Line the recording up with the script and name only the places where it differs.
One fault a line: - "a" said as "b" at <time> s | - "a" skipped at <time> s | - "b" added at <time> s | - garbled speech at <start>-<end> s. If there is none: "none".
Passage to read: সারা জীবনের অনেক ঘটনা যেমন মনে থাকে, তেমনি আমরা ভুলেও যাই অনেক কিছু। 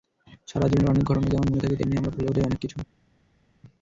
none